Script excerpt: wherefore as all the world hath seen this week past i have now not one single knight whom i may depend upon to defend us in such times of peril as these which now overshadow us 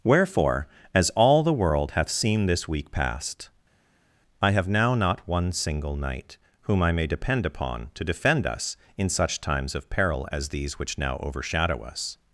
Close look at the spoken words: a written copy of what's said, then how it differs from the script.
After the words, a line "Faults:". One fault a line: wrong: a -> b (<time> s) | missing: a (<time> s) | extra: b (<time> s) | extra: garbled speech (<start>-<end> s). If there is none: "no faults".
wherefore as all the world hath seen this week past i have now not one single knight whom i may depend upon to defend us in such times of peril as these which now overshadow us
Faults:
no faults